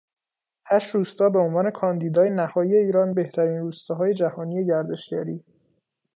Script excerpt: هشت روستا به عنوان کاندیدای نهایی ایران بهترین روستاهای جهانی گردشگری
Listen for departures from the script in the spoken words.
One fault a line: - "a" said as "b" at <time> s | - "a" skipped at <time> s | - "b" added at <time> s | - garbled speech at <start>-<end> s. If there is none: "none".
none